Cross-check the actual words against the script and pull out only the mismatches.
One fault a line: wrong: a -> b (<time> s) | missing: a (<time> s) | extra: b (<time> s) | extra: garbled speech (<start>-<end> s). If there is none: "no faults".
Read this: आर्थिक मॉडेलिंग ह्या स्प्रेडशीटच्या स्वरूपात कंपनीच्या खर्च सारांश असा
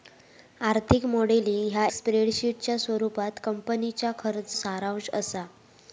no faults